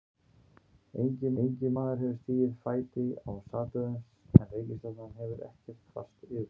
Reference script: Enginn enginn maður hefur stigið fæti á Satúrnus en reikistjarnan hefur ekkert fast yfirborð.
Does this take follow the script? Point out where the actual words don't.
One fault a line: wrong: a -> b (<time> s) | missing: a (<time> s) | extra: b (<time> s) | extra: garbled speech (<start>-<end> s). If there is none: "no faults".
no faults